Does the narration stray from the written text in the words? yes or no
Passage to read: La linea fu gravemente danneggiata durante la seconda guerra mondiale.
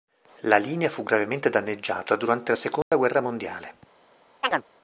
no